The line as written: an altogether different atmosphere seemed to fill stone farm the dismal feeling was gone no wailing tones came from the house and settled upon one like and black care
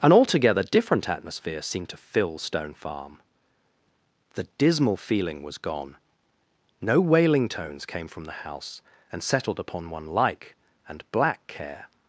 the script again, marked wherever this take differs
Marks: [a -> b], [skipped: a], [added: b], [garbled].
an altogether different atmosphere seemed to fill stone farm the dismal feeling was gone no wailing tones came from the house and settled upon one like and black care